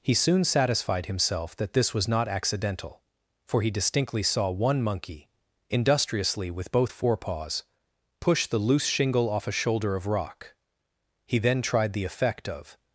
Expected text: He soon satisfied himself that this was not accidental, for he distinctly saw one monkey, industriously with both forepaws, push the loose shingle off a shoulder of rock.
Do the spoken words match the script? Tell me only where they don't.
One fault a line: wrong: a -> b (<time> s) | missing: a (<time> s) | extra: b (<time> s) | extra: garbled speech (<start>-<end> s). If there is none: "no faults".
extra: He then tried the effect of (11.3 s)